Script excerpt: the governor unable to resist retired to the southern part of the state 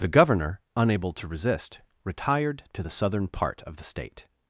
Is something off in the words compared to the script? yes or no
no